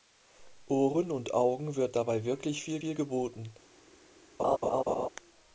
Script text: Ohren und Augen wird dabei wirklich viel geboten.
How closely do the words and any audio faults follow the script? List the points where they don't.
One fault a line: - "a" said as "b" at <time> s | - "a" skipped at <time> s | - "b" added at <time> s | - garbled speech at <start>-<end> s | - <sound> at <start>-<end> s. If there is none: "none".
- "viel" added at 2.8 s
- laugh at 4.4-5.1 s